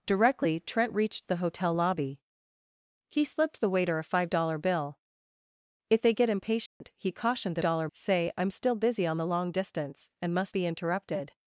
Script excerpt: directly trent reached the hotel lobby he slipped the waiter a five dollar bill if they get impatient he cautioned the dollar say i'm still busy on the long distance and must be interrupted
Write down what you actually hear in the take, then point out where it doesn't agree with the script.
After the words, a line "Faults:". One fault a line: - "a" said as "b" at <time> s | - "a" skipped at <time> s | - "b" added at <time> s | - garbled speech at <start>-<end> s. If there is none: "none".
directly trent reached the hotel lobby he slipped the waiter a five dollar bill if they get impatient he cautioned the dollar say i'm still busy on the long distance and must be interrupted
Faults:
none